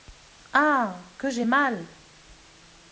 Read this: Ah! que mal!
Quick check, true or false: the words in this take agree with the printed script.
false